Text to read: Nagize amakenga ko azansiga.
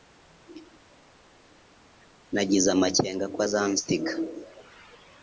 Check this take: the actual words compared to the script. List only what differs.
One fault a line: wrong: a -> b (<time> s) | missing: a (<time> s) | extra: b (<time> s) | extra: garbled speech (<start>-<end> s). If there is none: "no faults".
no faults